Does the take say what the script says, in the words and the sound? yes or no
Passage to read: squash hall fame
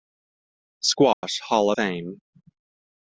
no